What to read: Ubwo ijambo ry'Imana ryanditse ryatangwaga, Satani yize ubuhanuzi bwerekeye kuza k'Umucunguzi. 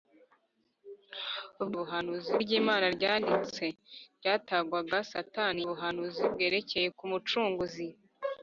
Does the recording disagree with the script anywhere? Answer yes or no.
yes